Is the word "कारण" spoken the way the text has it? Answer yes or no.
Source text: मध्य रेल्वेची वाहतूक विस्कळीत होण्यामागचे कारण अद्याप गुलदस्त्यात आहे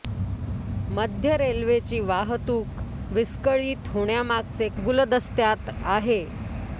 no